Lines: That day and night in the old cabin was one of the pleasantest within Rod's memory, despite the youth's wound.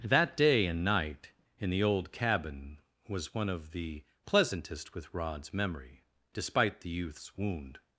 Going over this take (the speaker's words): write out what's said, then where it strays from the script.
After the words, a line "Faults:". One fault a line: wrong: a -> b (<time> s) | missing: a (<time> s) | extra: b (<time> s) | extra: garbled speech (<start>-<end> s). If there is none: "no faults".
That day and night in the old cabin was one of the pleasantest with Rod's memory, despite the youth's wound.
Faults:
wrong: within -> with (5.0 s)